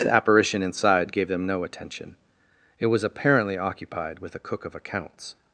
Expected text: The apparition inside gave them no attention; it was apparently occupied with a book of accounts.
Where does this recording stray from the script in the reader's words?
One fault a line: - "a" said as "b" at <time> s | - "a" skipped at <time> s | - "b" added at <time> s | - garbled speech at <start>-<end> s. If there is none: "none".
- "book" said as "cook" at 4.4 s